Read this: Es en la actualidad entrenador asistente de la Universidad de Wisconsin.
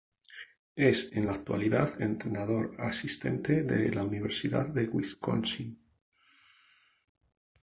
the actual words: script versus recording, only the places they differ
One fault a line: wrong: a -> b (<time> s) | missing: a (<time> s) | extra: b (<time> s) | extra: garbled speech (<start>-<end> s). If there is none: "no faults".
no faults